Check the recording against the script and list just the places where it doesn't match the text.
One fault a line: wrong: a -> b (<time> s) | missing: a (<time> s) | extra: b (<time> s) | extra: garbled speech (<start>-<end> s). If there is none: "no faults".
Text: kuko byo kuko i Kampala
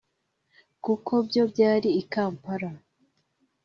wrong: kuko -> byari (1.5 s)